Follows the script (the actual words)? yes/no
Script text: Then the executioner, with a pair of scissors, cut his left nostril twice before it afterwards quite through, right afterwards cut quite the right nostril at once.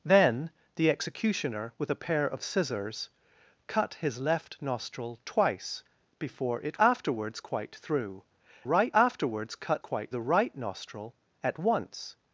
yes